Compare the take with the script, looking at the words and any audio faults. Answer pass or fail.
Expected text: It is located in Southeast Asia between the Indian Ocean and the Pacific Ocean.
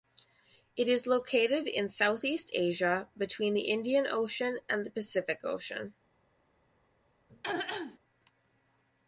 fail